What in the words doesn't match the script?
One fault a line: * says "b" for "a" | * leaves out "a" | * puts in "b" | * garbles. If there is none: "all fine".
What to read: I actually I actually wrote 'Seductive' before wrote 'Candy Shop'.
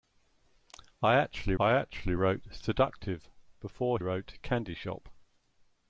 all fine